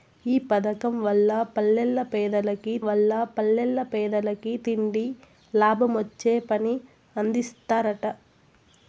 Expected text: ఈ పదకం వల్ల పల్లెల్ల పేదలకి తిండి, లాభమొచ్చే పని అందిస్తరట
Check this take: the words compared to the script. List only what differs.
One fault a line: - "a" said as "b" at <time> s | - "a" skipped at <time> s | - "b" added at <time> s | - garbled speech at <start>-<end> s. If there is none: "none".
- "వల్ల పల్లెల్ల పేదలకి" added at 2.8 s